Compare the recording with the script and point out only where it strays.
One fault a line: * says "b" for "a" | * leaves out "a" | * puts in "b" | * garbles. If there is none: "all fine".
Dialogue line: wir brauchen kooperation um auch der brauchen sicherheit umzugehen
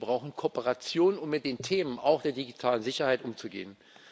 * puts in "mit den themen"
* says "digitalen" for "brauchen"